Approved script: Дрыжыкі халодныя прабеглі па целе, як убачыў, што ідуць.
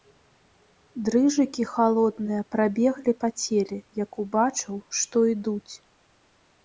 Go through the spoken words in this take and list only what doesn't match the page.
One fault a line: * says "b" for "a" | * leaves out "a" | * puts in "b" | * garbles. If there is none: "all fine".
all fine